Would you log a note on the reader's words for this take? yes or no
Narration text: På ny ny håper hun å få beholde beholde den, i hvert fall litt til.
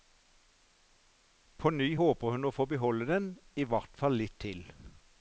yes